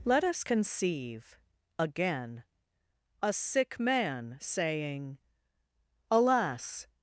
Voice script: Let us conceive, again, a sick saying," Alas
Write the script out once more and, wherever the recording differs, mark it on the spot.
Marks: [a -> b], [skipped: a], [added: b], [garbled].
Let us conceive, again, a sick [added: man] saying," Alas